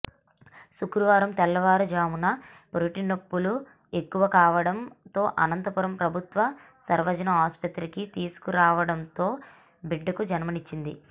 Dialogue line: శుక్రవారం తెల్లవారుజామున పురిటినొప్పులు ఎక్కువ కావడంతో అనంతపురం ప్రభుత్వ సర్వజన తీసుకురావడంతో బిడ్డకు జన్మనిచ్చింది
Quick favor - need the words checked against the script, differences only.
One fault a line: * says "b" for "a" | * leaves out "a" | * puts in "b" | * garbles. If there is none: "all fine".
* puts in "ఆసుపత్రికి"